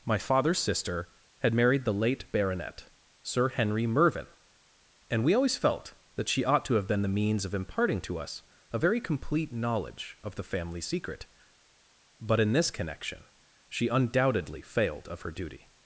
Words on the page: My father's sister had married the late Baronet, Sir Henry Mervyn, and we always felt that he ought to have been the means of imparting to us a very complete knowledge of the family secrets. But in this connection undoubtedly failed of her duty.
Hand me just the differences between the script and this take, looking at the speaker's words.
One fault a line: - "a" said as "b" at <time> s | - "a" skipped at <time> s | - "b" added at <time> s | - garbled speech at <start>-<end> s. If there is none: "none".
- "he" said as "she" at 6.3 s
- "secrets" said as "secret" at 10.8 s
- "she" added at 13.7 s